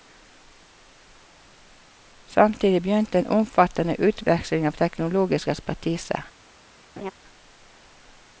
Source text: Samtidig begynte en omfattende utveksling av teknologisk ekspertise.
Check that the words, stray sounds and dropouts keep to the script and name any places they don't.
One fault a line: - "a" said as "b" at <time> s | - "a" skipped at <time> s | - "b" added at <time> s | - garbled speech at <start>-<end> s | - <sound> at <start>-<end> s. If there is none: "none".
- laugh at 7.0-7.1 s